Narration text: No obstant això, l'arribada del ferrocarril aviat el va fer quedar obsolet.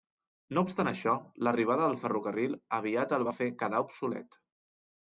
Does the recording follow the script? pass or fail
pass